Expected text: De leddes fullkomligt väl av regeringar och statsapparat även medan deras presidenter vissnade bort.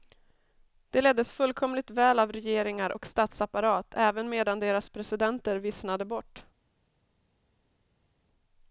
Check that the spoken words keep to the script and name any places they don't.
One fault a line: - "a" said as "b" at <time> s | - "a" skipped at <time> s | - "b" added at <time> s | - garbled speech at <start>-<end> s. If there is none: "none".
none